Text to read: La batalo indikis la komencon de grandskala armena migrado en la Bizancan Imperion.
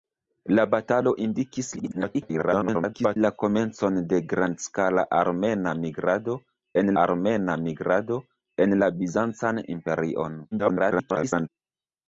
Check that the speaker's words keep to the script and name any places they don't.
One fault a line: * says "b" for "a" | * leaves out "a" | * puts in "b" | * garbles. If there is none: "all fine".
* garbles
* puts in "armena migrado en"
* garbles